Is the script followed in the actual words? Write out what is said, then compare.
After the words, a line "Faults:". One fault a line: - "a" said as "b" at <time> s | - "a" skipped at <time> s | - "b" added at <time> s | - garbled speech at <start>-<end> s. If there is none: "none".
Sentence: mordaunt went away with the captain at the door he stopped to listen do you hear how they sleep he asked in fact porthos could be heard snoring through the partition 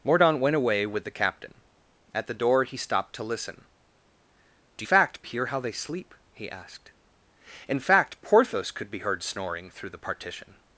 mordaunt went away with the captain at the door he stopped to listen do fact hear how they sleep he asked in fact porthos could be heard snoring through the partition
Faults:
- "you" said as "fact" at 4.8 s